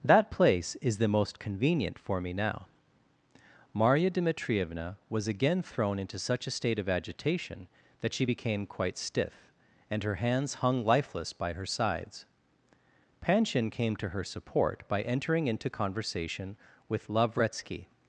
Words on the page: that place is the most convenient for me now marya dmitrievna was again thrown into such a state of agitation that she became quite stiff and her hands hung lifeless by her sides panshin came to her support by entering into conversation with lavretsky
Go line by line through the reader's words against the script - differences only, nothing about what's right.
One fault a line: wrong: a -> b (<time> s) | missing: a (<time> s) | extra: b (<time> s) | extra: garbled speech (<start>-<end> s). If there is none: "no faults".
no faults